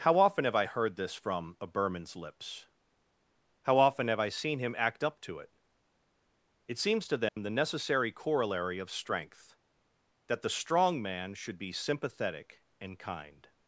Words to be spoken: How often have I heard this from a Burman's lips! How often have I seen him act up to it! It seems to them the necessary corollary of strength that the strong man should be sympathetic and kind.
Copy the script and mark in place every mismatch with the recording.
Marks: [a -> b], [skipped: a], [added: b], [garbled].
How often have I heard this from a Burman's lips! How often have I seen him act up to it! It seems to them the necessary corollary of strength that the strong man should be sympathetic and kind.